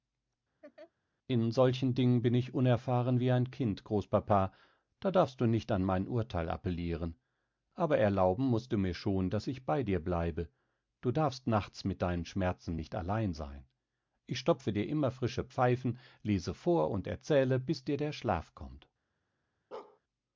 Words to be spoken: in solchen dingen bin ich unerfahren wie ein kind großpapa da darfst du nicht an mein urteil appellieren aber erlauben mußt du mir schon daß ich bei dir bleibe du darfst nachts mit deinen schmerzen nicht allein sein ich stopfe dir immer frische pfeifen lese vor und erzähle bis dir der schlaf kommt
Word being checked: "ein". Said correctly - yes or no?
yes